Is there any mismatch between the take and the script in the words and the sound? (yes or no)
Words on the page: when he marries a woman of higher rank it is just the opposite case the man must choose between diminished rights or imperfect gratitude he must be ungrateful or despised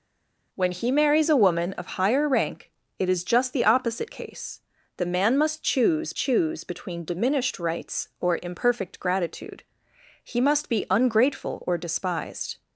yes